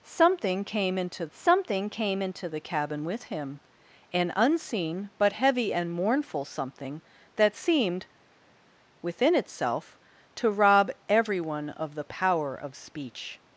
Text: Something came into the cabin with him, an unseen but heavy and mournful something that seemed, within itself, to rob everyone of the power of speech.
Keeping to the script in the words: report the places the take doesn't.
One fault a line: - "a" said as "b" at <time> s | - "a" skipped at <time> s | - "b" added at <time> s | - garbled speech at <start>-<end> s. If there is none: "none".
- "something came into" added at 1.3 s